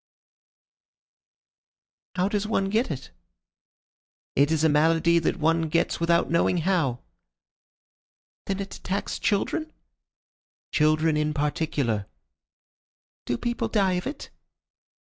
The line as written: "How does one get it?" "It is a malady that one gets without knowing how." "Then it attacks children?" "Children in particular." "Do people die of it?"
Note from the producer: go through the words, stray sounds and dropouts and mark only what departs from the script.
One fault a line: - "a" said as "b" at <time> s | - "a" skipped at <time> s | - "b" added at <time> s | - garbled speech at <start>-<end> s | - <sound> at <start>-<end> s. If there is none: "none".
none